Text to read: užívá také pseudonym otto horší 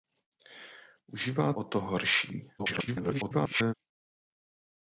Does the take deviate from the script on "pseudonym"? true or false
true